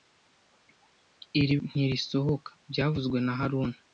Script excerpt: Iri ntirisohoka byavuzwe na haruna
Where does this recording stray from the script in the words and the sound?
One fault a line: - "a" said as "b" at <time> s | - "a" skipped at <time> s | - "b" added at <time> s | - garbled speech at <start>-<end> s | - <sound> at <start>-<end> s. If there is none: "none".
none